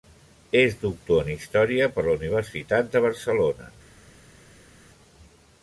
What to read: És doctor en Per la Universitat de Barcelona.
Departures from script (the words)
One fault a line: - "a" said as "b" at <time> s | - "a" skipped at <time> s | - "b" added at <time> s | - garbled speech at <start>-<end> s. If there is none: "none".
- "Història" added at 1.4 s